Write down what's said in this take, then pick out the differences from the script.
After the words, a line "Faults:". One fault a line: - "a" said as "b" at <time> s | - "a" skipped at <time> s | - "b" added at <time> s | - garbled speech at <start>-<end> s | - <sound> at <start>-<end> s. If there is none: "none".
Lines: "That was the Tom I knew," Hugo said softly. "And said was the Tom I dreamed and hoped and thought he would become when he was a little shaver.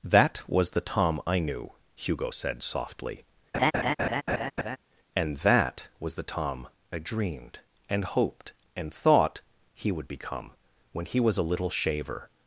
"That was the Tom I knew," Hugo said softly. "And that was the Tom I dreamed and hoped and thought he would become when he was a little shaver.
Faults:
- laugh at 3.5-4.8 s
- "said" said as "that" at 5.4 s